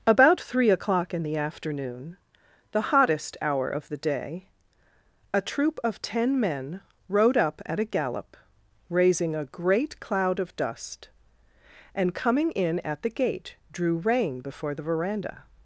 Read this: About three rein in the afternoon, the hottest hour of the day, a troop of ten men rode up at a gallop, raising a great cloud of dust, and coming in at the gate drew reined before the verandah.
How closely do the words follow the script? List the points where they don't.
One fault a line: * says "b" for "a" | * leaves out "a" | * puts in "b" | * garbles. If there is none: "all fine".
* says "o'clock" for "rein"
* says "rein" for "reined"